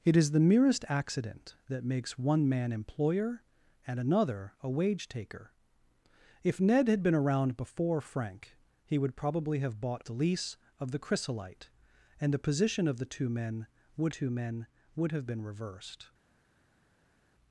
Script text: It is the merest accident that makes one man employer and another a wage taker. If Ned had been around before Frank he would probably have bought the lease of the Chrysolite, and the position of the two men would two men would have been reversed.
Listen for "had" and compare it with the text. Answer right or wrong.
right